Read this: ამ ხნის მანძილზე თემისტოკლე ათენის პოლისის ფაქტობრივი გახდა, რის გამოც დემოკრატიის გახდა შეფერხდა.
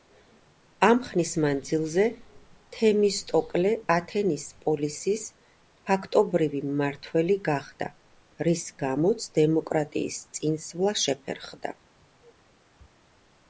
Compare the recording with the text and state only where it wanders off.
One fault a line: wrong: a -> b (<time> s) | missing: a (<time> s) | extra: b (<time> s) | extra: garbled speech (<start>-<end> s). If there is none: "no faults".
extra: მმართველი (6.7 s)
wrong: გახდა -> წინსვლა (10.4 s)